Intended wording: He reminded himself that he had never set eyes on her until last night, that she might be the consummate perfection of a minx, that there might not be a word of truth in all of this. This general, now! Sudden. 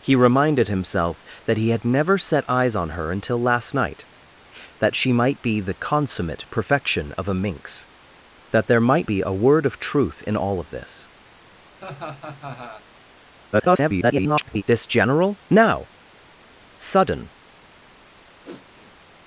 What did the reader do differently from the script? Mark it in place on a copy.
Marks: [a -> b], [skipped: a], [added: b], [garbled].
He reminded himself that he had never set eyes on her until last night, that she might be the consummate perfection of a minx, that there might [skipped: not] be a word of truth in all of this. [garbled] This general, now! Sudden.